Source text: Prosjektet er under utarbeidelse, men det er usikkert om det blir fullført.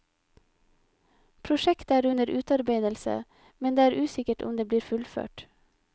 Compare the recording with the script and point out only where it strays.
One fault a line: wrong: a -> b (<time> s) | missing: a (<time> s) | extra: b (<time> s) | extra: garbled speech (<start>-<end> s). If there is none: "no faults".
no faults